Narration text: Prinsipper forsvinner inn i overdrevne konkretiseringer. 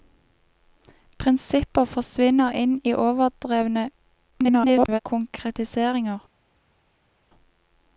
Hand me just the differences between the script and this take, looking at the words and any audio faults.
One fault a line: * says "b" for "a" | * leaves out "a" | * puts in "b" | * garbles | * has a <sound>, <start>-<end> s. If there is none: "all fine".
* garbles